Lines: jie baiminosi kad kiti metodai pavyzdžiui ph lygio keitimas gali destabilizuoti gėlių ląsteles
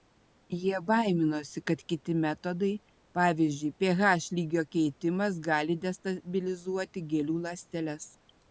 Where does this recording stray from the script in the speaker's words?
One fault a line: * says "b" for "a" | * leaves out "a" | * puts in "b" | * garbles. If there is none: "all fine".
all fine